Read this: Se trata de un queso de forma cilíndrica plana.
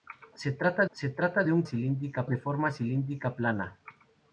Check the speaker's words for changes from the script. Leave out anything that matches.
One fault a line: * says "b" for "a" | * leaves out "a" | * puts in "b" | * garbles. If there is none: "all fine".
* puts in "se trata"
* says "cilíndrica" for "queso"